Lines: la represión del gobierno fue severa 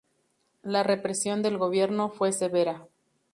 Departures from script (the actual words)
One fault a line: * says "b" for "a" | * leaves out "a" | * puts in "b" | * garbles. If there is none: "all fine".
all fine